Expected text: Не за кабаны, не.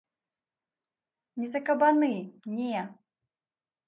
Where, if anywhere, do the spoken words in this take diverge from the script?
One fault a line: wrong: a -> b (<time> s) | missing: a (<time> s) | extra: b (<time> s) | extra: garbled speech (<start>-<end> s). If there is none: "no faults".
no faults